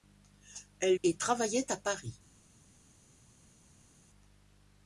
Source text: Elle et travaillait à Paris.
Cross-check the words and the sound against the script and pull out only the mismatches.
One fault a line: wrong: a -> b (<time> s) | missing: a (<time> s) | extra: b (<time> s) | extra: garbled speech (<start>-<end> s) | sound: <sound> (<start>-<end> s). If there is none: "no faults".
no faults